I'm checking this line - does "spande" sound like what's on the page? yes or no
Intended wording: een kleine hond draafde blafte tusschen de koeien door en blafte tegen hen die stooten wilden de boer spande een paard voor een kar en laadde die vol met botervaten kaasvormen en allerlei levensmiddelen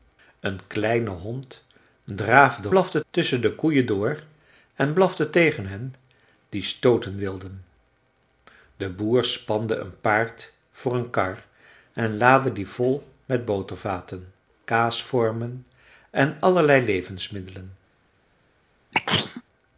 yes